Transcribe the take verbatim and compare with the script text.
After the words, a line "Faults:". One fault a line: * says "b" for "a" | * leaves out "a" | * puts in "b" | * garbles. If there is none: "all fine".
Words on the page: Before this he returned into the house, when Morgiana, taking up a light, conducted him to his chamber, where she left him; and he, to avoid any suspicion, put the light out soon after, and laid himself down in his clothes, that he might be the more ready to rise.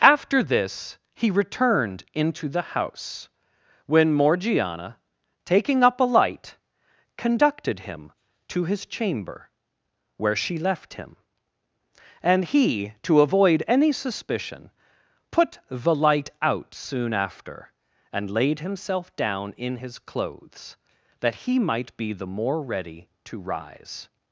After this he returned into the house, when Morgiana, taking up a light, conducted him to his chamber, where she left him; and he, to avoid any suspicion, put the light out soon after, and laid himself down in his clothes, that he might be the more ready to rise.
Faults:
* says "After" for "Before"